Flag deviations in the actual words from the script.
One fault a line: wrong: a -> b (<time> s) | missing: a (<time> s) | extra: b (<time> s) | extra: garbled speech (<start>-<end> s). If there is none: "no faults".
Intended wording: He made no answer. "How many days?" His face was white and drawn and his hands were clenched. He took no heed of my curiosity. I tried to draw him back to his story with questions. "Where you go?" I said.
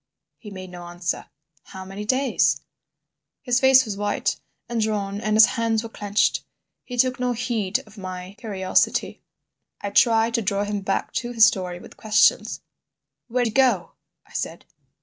no faults